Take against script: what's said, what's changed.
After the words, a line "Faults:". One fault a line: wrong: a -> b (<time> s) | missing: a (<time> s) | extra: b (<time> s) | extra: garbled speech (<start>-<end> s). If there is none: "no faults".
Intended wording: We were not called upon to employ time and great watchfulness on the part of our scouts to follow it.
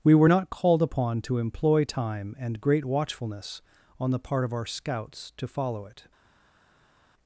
We were not called upon to employ time and great watchfulness on the part of our scouts to follow it.
Faults:
no faults